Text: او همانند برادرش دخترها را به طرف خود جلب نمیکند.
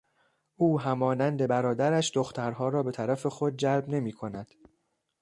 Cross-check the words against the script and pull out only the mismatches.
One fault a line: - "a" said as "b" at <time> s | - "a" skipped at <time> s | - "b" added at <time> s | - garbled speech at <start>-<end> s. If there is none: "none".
none